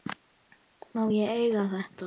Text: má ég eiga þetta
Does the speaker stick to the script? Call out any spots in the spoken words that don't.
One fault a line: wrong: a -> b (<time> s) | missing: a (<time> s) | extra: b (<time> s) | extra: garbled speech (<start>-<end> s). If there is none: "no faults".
no faults